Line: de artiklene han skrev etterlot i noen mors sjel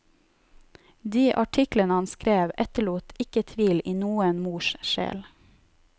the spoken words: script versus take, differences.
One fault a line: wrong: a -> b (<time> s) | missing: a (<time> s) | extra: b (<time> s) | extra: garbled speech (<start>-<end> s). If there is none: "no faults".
extra: ikke tvil (3.2 s)